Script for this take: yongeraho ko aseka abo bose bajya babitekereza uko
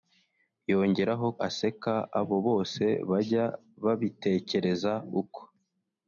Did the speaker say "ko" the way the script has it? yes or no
no